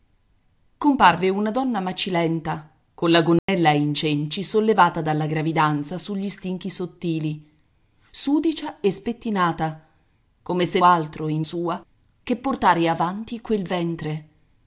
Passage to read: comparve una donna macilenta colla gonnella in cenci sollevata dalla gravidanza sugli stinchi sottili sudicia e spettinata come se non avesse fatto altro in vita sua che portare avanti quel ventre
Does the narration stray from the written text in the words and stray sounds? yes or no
yes